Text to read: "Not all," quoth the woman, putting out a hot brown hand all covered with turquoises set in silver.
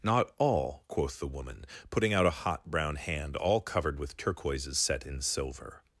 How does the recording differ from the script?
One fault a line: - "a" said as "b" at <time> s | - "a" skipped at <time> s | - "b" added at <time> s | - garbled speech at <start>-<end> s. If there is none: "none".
none